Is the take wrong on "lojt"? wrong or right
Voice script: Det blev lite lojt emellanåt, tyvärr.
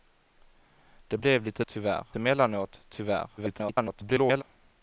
wrong